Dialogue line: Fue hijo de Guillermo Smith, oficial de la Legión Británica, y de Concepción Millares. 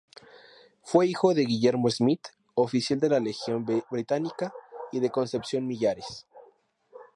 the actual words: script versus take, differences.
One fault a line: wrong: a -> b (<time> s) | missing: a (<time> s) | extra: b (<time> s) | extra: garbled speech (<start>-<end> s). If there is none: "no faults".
no faults